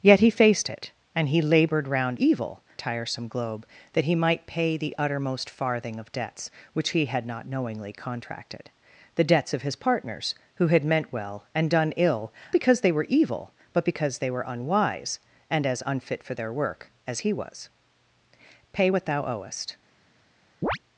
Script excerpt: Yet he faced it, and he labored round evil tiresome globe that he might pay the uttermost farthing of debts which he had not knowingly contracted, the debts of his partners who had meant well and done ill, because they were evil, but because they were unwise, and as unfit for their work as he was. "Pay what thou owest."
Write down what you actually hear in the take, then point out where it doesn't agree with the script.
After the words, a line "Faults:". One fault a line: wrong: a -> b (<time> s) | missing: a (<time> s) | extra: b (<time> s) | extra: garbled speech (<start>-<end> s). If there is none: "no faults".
Yet he faced it, and he labored round evil tiresome globe that he might pay the uttermost farthing of debts which he had not knowingly contracted, the debts of his partners who had meant well and done ill, because they were evil, but because they were unwise, and as unfit for their work as he was. "Pay what thou owest."
Faults:
no faults